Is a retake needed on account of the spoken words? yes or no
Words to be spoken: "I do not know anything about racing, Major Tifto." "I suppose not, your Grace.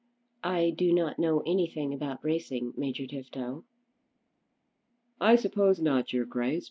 no